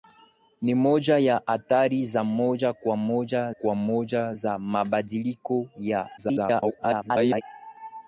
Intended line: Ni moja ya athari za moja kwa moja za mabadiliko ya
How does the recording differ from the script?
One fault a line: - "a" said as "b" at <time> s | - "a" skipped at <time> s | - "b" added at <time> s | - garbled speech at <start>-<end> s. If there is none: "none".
- "kwa moja" added at 3.5 s
- garbled speech at 6.2-7.4 s